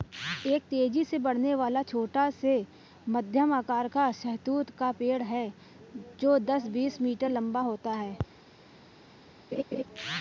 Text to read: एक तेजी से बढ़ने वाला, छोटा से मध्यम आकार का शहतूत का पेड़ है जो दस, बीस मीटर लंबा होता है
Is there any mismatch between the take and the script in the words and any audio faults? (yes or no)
yes